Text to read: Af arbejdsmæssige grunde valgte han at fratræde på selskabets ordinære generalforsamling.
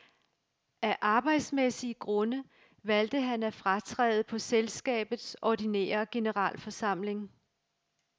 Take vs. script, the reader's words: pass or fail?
pass